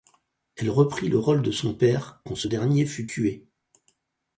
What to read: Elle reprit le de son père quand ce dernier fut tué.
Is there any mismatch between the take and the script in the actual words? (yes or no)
yes